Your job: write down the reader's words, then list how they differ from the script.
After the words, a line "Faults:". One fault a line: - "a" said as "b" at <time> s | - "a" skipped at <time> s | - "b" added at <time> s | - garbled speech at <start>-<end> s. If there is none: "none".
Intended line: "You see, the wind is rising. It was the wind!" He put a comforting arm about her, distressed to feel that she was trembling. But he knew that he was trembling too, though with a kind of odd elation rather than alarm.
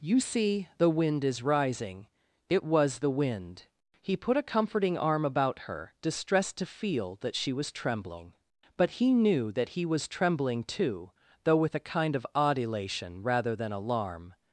"You see, the wind is rising. It was the wind!" He put a comforting arm about her, distressed to feel that she was trembling. But he knew that he was trembling too, though with a kind of odd elation rather than alarm.
Faults:
none